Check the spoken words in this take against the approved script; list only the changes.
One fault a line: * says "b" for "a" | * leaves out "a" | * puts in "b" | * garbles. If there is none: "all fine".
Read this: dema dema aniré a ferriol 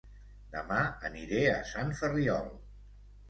* leaves out "dema"
* puts in "sant"